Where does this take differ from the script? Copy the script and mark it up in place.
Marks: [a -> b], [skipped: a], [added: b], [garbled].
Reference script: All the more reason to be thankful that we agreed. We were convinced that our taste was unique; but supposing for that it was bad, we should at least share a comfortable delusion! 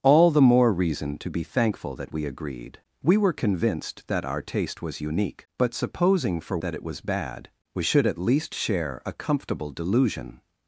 All the more reason to be thankful that we agreed. We were convinced that our taste was unique; but supposing for that it was bad, we should at least share a comfortable delusion!